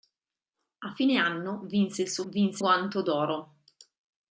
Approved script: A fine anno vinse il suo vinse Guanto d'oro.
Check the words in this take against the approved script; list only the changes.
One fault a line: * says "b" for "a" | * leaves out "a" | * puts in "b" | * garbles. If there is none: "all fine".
all fine